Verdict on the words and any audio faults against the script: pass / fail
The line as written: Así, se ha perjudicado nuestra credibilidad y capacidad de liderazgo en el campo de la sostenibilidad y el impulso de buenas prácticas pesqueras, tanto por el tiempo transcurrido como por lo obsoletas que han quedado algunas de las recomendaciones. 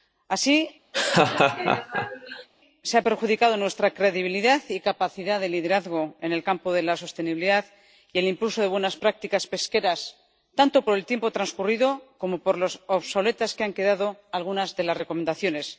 fail